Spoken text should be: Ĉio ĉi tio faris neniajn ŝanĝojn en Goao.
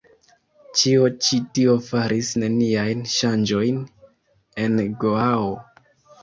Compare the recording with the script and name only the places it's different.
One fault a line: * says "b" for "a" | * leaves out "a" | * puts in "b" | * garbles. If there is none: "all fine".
all fine